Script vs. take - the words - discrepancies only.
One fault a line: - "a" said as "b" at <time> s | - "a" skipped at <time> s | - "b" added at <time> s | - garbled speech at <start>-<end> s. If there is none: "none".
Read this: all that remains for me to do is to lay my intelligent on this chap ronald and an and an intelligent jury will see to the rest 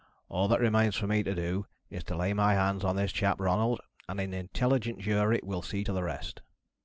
- "intelligent" said as "hands" at 2.5 s
- "and an" skipped at 4.3 s